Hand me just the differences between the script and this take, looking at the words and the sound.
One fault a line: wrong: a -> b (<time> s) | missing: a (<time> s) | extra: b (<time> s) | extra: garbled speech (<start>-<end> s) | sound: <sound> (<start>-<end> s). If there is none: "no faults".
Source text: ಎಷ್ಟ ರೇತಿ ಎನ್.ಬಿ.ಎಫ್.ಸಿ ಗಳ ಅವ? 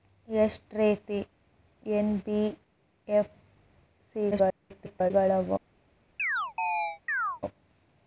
extra: garbled speech (4.3-5.1 s)
sound: chirp (6.2-7.4 s)